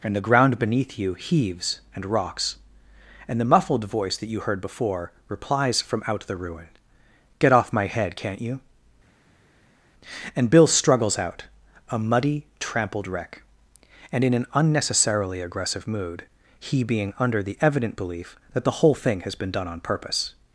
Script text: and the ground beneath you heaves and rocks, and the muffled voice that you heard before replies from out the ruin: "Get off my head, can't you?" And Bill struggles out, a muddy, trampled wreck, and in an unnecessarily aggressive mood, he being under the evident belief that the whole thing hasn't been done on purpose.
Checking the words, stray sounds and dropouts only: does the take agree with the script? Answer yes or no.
no